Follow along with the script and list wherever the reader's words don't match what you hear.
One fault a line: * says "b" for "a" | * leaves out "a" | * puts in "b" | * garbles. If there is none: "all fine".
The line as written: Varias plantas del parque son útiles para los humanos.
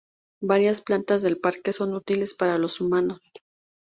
all fine